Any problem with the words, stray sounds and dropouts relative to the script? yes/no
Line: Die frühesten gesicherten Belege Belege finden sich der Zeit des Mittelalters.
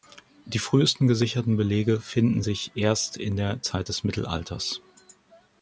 yes